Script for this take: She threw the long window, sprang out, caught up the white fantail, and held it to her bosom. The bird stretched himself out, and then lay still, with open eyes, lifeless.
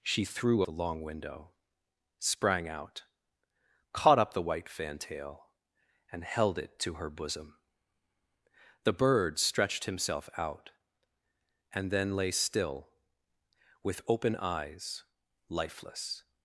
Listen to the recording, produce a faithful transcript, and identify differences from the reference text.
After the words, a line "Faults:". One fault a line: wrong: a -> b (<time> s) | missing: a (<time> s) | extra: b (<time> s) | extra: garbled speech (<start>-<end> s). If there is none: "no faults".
She threw the long window, sprang out, caught up the white fantail, and held it to her bosom. The bird stretched himself out, and then lay still, with open eyes, lifeless.
Faults:
no faults